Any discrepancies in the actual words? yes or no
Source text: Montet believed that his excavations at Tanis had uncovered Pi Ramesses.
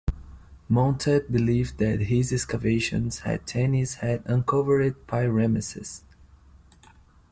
no